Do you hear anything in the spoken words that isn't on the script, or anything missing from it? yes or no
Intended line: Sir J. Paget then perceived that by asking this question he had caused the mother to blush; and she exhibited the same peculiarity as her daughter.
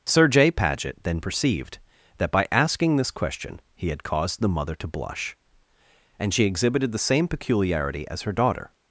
no